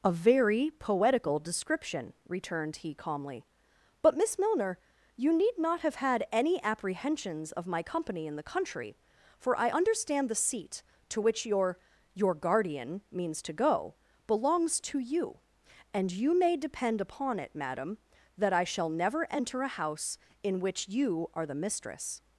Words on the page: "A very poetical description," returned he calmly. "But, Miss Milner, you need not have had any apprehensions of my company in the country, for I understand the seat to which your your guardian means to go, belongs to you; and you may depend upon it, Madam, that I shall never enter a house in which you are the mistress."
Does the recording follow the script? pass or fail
pass